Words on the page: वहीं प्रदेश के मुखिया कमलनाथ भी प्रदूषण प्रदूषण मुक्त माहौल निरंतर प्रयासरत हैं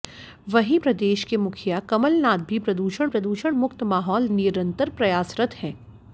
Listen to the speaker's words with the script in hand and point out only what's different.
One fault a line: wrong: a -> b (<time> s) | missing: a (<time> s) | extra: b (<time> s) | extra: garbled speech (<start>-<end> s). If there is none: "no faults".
no faults